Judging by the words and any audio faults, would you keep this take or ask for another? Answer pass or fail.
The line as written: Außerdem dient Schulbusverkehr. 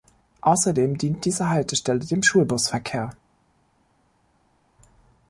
fail